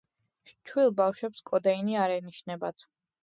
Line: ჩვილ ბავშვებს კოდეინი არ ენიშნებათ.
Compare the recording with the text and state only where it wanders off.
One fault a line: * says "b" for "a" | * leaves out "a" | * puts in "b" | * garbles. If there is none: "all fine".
all fine